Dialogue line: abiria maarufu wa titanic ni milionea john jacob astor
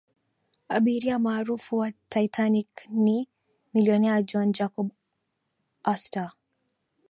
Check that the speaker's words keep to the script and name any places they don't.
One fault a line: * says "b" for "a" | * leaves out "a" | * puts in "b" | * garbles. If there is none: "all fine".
all fine